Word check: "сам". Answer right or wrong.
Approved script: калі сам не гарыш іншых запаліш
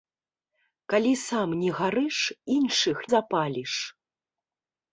right